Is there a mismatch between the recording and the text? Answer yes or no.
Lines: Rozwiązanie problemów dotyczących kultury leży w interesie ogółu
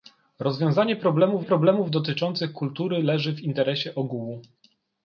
yes